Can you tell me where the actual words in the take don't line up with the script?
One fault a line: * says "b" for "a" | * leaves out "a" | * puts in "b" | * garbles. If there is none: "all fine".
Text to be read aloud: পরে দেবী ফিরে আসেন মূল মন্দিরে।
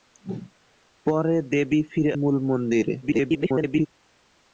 * leaves out "আসেন"
* garbles